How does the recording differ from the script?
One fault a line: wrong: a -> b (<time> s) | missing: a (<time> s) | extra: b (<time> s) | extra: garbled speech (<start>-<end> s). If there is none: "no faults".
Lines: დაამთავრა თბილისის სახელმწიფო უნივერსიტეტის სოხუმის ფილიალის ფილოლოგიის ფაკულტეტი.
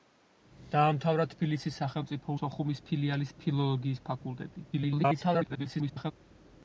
missing: უნივერსიტეტის (2.4 s)
extra: garbled speech (4.7-6.1 s)